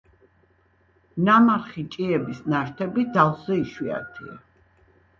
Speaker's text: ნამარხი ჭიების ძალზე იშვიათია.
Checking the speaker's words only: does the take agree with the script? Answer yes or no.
no